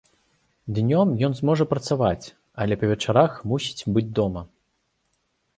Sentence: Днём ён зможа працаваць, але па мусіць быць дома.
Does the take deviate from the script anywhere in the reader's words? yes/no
yes